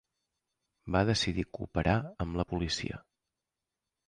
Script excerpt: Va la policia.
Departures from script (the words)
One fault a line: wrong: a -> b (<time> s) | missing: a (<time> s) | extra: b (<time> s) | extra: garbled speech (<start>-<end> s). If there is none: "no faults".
extra: decidir cooperar amb (1.1 s)